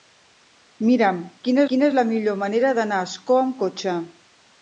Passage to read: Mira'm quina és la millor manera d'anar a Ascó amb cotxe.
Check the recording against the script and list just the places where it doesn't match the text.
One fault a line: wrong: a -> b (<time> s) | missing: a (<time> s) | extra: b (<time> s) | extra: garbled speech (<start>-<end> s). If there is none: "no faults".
extra: quina (1.7 s)